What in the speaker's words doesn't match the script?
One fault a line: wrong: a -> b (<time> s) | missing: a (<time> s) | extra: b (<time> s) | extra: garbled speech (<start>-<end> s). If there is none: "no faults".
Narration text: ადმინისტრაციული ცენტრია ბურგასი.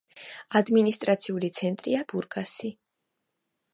no faults